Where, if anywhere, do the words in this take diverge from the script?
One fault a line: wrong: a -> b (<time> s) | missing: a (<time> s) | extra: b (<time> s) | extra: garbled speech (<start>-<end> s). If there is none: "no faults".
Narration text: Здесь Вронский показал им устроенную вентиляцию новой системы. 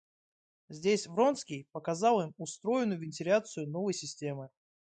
no faults